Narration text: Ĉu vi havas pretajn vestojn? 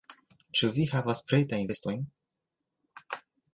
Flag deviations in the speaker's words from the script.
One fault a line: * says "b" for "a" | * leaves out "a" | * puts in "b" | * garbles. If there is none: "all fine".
all fine